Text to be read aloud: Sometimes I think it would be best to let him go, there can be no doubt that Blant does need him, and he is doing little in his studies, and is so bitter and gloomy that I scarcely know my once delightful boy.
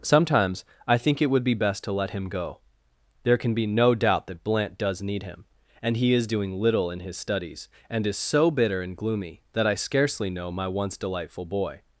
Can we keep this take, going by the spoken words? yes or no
yes